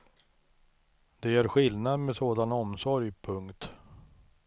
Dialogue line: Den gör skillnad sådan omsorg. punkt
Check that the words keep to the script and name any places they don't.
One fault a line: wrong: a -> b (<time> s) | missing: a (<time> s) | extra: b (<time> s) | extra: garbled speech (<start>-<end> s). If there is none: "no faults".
wrong: Den -> Det (1.2 s)
extra: med (2.0 s)